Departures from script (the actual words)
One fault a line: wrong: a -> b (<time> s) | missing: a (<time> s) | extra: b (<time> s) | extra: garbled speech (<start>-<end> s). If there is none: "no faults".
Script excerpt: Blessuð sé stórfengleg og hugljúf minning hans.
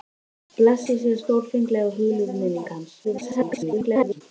extra: garbled speech (3.0-4.2 s)